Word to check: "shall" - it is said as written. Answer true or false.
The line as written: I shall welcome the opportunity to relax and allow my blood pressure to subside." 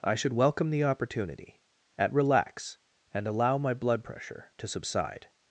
false